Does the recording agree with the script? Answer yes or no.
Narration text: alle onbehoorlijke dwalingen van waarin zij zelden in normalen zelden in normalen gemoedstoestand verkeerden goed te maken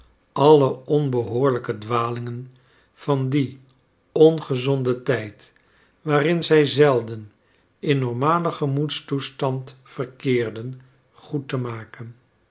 no